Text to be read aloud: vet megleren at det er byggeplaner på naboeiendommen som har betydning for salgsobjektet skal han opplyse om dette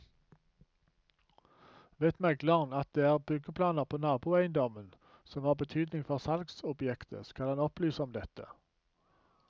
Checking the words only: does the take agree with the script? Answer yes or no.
yes